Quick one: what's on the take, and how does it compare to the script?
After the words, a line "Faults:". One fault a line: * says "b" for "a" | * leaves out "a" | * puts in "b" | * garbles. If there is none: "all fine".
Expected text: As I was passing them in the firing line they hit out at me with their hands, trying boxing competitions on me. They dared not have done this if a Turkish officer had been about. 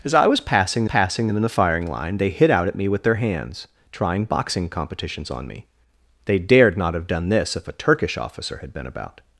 As I was passing passing them in the firing line they hit out at me with their hands, trying boxing competitions on me. They dared not have done this if a Turkish officer had been about.
Faults:
* puts in "passing"